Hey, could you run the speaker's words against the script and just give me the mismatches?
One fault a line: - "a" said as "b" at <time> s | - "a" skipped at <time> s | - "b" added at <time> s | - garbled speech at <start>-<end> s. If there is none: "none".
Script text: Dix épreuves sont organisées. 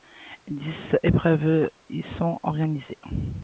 - "y" added at 1.9 s